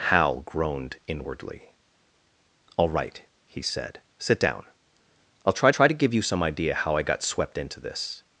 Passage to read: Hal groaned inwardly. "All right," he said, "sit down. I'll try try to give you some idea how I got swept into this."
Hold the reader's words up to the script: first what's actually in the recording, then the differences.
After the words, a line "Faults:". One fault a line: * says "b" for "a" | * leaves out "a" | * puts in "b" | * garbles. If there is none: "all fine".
Hal groaned inwardly. "All right," he said, "sit down. I'll try try to give you some idea how I got swept into this."
Faults:
all fine